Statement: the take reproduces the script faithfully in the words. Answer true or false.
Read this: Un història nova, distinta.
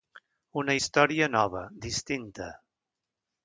false